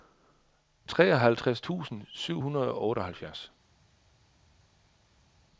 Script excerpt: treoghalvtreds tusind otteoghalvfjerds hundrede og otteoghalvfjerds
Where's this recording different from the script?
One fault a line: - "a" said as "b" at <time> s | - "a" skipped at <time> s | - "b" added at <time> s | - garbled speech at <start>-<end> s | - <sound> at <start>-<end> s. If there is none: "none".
- "otteoghalvfjerds" said as "syv" at 2.1 s